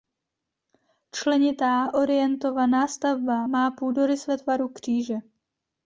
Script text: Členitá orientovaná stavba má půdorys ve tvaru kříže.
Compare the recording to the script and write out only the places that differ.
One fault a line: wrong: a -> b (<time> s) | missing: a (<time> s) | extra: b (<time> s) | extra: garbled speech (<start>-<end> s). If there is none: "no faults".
no faults